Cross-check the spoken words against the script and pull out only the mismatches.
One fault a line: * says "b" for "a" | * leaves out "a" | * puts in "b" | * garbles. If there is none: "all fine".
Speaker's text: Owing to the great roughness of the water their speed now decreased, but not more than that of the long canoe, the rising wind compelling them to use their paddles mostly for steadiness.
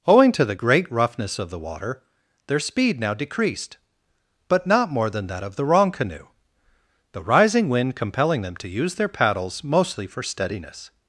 * says "wrong" for "long"